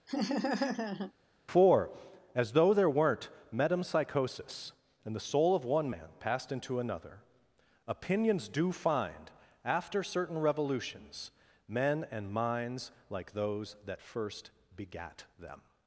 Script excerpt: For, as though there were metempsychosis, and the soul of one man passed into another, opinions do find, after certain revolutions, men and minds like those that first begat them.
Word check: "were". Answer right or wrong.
wrong